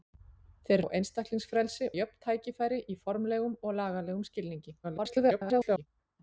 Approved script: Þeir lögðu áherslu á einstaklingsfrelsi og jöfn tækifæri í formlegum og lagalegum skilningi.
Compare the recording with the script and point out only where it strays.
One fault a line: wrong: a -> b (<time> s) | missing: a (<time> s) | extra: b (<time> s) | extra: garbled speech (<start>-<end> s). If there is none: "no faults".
missing: lögðu áherslu (0.8 s)
missing: og (1.9 s)
extra: garbled speech (4.8-5.9 s)